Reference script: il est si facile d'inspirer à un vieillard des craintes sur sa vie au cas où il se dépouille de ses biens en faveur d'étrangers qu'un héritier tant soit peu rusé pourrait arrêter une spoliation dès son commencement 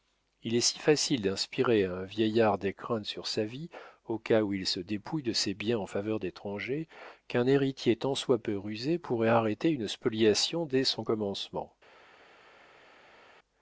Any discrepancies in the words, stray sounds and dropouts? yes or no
no